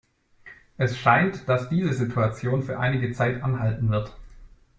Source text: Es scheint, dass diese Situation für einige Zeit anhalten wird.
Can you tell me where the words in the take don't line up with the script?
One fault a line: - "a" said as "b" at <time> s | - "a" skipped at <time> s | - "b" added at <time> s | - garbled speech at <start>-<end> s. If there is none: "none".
none